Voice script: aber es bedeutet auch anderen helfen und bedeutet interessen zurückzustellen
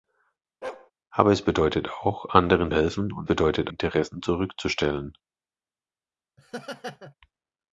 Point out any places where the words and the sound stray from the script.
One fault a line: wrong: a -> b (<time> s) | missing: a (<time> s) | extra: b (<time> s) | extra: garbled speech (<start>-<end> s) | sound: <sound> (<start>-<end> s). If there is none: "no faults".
sound: bark (0.6-0.9 s)
sound: laugh (6.4-7.1 s)